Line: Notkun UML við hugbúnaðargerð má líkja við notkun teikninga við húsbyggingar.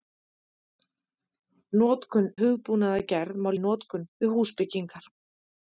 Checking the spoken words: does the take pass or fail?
fail